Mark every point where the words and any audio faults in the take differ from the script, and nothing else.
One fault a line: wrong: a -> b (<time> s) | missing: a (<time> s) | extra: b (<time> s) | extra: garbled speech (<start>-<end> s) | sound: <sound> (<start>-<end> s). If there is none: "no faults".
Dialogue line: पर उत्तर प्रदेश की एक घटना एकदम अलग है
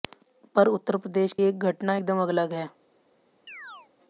missing: की (1.3 s)
sound: chirp (3.5-3.9 s)